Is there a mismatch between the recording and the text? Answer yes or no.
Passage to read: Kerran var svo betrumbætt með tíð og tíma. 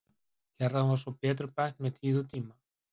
no